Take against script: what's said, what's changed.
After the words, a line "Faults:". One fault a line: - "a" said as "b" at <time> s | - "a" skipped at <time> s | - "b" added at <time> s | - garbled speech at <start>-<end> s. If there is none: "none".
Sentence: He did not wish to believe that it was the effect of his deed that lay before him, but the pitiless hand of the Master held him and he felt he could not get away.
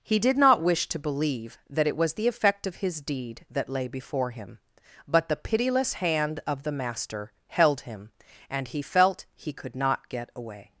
He did not wish to believe that it was the effect of his deed that lay before him, but the pitiless hand of the Master held him and he felt he could not get away.
Faults:
none